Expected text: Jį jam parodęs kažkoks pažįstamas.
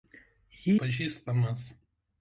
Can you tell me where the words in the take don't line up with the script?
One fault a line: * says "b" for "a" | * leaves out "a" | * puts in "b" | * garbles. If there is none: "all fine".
* leaves out "jam parodęs kažkoks"